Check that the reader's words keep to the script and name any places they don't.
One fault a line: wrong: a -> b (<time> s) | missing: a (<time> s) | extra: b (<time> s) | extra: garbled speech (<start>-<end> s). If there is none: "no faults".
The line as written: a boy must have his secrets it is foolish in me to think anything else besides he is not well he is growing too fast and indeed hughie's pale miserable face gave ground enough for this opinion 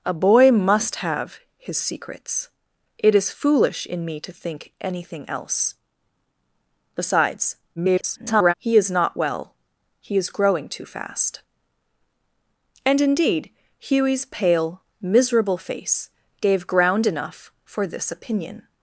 extra: garbled speech (7.8-8.5 s)